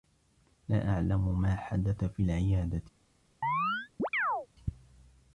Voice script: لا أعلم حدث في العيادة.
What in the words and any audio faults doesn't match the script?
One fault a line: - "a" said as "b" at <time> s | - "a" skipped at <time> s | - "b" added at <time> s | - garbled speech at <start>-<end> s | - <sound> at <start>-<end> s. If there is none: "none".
- "ما" added at 1.4 s
- chirp at 3.4-4.5 s